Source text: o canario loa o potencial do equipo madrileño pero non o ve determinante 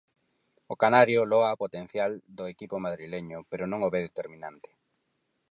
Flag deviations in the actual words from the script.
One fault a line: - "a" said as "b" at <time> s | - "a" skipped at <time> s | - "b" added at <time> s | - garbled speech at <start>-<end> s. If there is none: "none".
none